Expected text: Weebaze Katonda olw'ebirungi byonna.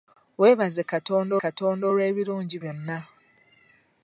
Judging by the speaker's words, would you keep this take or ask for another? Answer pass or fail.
fail